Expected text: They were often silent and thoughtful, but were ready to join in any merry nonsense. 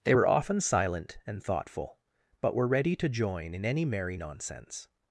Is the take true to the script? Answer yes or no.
yes